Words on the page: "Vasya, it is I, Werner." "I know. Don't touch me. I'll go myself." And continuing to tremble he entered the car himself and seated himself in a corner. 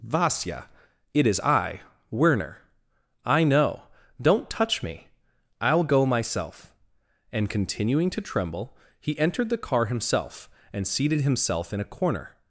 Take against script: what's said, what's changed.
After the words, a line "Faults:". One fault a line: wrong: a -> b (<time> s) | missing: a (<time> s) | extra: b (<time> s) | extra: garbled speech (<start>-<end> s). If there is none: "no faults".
"Vasya, it is I, Werner." "I know. Don't touch me. I'll go myself." And continuing to tremble he entered the car himself and seated himself in a corner.
Faults:
no faults